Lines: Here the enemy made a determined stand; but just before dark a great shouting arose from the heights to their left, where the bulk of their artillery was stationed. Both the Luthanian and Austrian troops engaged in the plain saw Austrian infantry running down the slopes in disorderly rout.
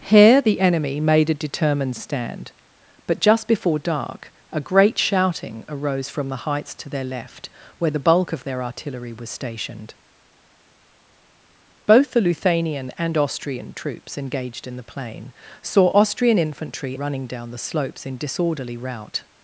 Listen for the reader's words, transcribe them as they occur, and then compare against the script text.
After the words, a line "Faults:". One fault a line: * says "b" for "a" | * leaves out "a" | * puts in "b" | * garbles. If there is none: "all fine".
Here the enemy made a determined stand; but just before dark a great shouting arose from the heights to their left, where the bulk of their artillery was stationed. Both the Luthanian and Austrian troops engaged in the plain saw Austrian infantry running down the slopes in disorderly rout.
Faults:
all fine